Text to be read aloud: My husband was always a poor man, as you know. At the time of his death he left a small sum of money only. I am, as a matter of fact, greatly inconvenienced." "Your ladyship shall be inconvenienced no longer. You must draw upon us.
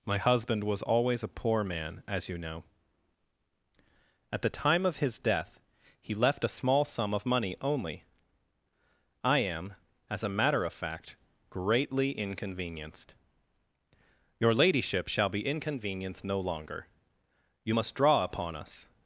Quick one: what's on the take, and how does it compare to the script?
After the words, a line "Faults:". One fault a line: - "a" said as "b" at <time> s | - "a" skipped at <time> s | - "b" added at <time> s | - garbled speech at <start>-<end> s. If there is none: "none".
My husband was always a poor man, as you know. At the time of his death he left a small sum of money only. I am, as a matter of fact, greatly inconvenienced." "Your ladyship shall be inconvenienced no longer. You must draw upon us.
Faults:
none